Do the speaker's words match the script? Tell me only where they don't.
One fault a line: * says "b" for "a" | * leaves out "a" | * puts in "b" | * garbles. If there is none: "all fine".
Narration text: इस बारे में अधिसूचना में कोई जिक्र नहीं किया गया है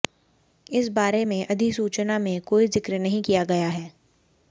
all fine